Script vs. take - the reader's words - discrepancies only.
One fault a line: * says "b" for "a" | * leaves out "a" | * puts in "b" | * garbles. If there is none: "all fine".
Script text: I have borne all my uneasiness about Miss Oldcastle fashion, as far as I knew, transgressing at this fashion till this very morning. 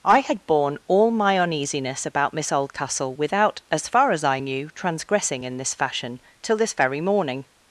* says "had" for "have"
* says "without" for "fashion"
* says "in" for "at"